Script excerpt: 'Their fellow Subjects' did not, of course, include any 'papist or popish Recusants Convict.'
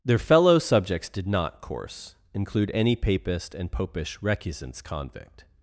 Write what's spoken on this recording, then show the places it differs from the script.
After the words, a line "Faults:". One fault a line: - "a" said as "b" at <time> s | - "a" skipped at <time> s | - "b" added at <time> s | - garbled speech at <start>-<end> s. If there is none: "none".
'Their fellow Subjects' did not, course, include any 'papist and popish Recusants Convict.'
Faults:
- "of" skipped at 1.6 s
- "or" said as "and" at 3.5 s